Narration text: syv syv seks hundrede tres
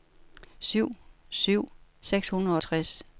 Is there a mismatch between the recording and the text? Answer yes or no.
no